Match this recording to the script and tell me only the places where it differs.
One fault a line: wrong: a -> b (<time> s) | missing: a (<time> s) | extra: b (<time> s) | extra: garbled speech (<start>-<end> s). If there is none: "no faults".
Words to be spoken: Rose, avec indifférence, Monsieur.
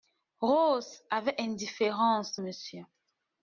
no faults